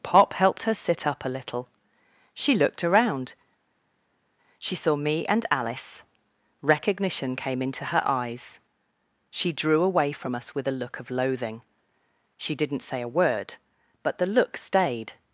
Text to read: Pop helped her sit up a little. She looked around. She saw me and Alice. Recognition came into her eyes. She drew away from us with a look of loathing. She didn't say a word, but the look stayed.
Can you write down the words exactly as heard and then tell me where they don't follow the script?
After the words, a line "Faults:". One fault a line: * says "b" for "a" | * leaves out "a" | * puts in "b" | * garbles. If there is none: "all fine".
Pop helped her sit up a little. She looked around. She saw me and Alice. Recognition came into her eyes. She drew away from us with a look of loathing. She didn't say a word, but the look stayed.
Faults:
all fine